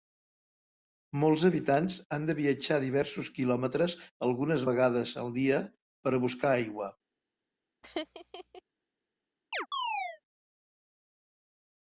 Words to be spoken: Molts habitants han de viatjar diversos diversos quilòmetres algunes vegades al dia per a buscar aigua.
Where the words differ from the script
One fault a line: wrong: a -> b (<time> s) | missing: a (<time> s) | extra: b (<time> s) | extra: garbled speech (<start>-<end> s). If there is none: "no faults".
missing: diversos (3.3 s)